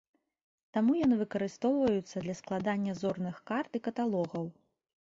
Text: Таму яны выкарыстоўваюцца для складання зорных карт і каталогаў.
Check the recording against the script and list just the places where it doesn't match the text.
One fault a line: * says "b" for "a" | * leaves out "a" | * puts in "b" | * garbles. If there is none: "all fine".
all fine